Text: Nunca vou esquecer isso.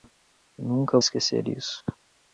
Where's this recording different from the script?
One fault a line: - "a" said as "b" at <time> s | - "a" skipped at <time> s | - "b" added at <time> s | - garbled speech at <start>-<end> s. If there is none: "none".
- "vou" skipped at 1.0 s